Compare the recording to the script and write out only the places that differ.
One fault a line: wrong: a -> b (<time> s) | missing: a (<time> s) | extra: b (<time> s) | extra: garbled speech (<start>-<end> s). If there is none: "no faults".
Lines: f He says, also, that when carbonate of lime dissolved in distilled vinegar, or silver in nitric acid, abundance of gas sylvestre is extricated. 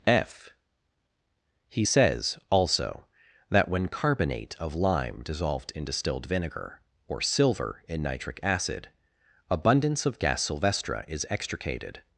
no faults